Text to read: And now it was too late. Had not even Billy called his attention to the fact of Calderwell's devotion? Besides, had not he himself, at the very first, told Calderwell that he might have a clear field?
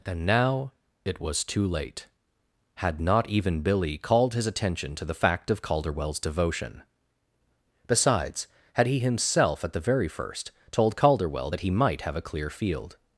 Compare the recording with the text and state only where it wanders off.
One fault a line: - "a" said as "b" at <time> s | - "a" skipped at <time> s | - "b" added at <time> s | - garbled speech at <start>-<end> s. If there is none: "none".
- "not" skipped at 8.9 s